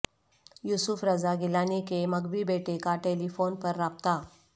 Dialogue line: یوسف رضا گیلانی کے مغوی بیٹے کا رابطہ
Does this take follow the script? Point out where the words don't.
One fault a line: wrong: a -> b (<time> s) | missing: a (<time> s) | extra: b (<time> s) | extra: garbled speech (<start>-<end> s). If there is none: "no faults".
extra: ٹیلی فون پر (3.0 s)